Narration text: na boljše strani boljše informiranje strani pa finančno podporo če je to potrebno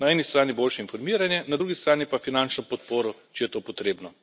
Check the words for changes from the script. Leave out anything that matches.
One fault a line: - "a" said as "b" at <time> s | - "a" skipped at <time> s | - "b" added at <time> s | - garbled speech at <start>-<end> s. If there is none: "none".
- "boljše" said as "eni" at 0.1 s
- "na drugi" added at 1.5 s